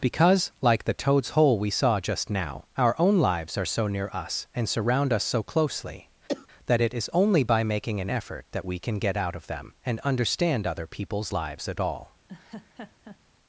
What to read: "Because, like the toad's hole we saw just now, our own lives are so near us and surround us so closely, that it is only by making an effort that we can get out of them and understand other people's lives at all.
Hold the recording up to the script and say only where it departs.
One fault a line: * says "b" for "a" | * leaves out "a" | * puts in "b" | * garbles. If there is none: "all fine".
all fine